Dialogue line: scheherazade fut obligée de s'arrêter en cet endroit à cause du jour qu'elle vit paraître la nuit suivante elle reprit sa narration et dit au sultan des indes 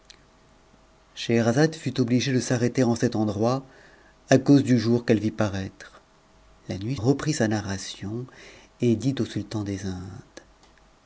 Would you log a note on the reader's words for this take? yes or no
yes